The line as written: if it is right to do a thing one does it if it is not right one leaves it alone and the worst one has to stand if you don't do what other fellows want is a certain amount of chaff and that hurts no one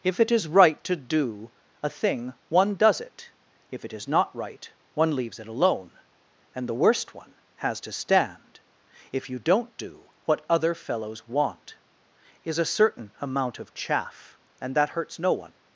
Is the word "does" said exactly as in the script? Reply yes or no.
yes